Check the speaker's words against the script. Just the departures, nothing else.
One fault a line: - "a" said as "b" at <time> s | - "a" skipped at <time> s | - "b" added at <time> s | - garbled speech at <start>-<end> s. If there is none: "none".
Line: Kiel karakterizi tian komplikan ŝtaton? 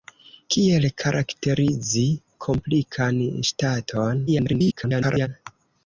- "tian" skipped at 2.0 s
- garbled speech at 4.3-5.3 s